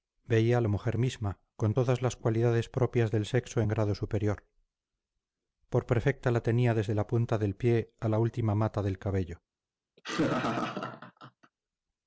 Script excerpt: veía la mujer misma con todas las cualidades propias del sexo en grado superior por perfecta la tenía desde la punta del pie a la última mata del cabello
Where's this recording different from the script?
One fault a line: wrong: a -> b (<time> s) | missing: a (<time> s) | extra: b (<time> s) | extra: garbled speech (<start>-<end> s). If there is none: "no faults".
no faults